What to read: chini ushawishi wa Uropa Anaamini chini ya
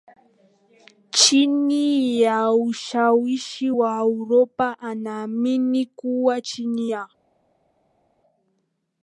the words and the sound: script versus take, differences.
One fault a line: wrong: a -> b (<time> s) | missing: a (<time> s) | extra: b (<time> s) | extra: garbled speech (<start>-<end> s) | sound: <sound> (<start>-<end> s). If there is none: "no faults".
extra: ya (2.2 s)
extra: kuwa (5.9 s)